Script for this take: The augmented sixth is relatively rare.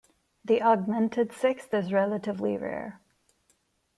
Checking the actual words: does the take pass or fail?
pass